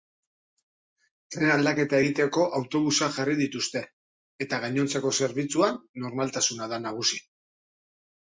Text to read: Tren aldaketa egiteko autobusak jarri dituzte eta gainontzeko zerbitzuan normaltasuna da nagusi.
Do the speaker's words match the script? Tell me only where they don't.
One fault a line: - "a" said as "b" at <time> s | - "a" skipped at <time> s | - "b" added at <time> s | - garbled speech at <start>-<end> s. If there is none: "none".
none